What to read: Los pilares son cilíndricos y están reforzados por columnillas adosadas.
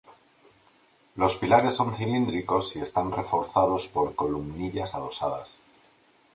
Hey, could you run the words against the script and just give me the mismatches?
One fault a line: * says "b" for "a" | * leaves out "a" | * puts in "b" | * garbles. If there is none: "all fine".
all fine